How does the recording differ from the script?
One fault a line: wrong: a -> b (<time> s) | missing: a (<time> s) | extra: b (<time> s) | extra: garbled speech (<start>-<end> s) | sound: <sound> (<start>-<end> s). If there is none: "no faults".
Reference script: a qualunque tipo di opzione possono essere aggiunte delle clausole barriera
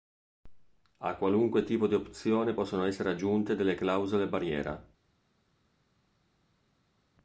no faults